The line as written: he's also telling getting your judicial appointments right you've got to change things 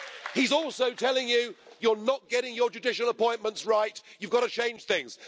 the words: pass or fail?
fail